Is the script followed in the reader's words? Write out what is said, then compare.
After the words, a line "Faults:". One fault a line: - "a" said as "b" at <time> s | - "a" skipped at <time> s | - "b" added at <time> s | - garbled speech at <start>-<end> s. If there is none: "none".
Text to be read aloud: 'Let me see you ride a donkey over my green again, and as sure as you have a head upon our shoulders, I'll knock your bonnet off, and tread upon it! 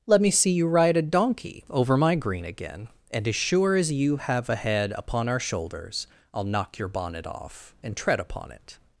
'Let me see you ride a donkey over my green again, and as sure as you have a head upon our shoulders, I'll knock your bonnet off, and tread upon it!
Faults:
none